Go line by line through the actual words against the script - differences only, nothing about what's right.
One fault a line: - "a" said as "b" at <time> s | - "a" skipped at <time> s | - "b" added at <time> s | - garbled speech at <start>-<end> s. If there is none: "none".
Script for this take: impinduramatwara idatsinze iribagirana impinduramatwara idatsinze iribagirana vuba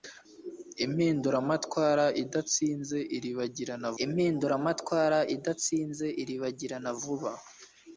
none